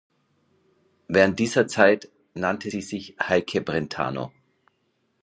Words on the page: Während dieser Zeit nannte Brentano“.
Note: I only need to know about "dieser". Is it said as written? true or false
true